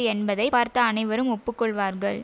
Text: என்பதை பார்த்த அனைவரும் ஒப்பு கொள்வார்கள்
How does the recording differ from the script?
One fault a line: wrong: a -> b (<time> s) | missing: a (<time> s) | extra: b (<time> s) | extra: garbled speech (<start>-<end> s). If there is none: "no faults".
no faults